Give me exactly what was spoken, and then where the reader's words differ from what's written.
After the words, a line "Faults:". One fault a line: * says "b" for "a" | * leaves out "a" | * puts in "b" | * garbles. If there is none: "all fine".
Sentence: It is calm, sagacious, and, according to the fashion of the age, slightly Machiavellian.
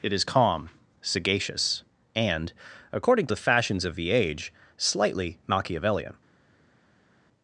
It is calm, sagacious, and, according to the fashions of the age, slightly Machiavellian.
Faults:
* says "fashions" for "fashion"